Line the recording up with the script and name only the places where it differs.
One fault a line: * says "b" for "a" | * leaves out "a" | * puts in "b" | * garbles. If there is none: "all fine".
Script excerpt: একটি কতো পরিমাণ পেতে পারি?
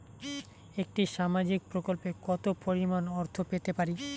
* puts in "সামাজিক প্রকল্পে"
* puts in "অর্থ"